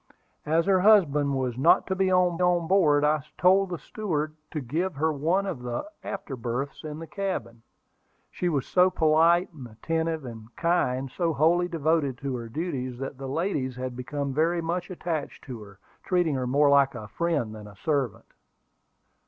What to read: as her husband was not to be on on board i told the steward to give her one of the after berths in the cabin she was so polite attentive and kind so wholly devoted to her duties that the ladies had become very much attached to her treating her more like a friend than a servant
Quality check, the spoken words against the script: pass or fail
pass